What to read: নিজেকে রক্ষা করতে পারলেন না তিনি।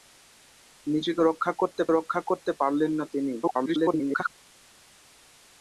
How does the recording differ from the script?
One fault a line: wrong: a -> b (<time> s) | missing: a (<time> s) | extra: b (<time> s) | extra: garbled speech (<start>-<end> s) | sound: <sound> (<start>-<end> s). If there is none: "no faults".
extra: রক্ষা করতে (1.9 s)
extra: garbled speech (3.4-4.3 s)